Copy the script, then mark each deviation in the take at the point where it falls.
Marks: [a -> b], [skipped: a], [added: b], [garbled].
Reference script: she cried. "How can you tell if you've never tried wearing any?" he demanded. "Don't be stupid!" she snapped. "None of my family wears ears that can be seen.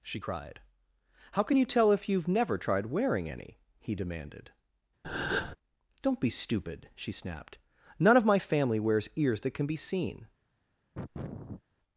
she cried. "How can you tell if you've never tried wearing any?" he demanded. "Don't be stupid!" she snapped. "None of my family wears ears that can be seen.